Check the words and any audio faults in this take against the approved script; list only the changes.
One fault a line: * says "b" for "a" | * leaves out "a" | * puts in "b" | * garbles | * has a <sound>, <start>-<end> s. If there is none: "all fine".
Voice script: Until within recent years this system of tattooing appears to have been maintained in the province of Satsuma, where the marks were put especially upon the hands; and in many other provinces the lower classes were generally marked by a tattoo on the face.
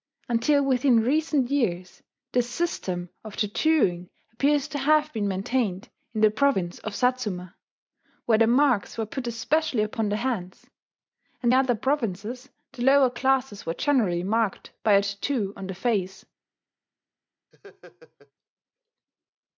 * leaves out "in many"
* has a laugh, 17.5-18.3 s